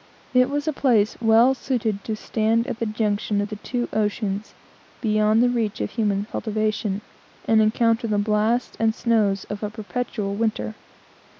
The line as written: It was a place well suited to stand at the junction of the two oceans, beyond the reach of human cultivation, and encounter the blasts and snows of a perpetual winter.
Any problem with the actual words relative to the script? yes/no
no